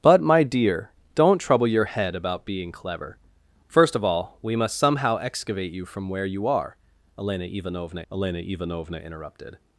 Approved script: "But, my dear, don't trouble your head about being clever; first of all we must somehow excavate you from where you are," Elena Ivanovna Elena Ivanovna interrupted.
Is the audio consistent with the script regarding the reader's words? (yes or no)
yes